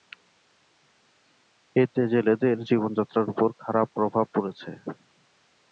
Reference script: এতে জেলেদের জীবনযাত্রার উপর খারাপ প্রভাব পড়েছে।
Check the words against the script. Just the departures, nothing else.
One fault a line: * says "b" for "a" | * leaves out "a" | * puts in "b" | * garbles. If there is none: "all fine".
all fine